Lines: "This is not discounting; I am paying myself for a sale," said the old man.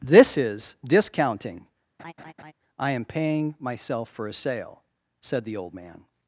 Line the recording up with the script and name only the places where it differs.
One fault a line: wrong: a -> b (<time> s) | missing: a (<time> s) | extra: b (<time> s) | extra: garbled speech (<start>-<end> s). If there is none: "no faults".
missing: not (0.8 s)